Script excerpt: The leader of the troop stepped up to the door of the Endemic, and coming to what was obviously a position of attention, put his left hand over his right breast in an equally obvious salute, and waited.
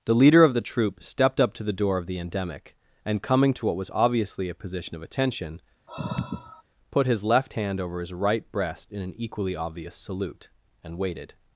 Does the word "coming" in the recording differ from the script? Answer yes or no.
no